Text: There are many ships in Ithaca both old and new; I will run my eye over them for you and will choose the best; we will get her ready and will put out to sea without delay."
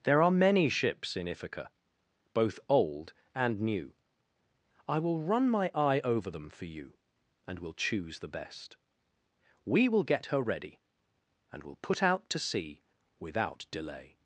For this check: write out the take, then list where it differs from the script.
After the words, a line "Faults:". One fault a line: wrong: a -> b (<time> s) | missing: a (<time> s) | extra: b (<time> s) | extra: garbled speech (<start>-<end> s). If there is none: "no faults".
There are many ships in Ithaca both old and new; I will run my eye over them for you and will choose the best; we will get her ready and will put out to sea without delay."
Faults:
no faults